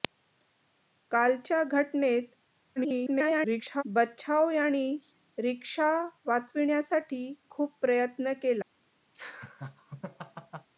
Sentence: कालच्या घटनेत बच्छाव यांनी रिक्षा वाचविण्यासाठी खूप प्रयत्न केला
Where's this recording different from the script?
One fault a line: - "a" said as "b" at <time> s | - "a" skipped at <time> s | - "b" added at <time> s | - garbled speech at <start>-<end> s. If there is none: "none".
- garbled speech at 2.8-3.8 s